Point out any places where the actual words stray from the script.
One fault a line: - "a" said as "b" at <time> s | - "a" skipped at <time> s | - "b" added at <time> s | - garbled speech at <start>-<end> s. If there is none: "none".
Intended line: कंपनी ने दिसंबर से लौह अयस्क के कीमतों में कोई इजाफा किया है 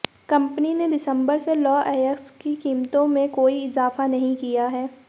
- "के" said as "की" at 2.4 s
- "नहीं" added at 4.1 s